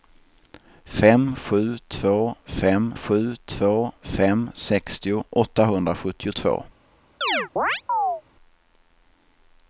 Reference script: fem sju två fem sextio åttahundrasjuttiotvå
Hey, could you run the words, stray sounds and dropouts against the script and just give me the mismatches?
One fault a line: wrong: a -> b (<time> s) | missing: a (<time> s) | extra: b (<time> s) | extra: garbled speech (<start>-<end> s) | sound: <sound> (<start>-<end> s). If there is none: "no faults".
extra: sju två fem (2.9 s)
sound: chirp (7.2-8.2 s)